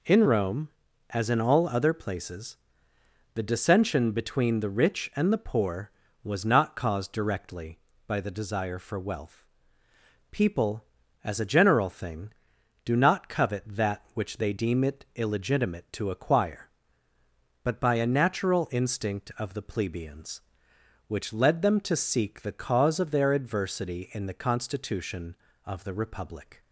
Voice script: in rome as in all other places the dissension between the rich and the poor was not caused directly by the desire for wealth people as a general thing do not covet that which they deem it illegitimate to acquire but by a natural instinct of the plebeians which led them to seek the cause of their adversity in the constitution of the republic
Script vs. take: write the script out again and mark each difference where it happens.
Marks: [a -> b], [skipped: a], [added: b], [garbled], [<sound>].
in rome as in all other places the dissension between the rich and the poor was not caused directly by the desire for wealth people as a general thing do not covet that which they deem it illegitimate to acquire but by a natural instinct of the plebeians which led them to seek the cause of their adversity in the constitution of the republic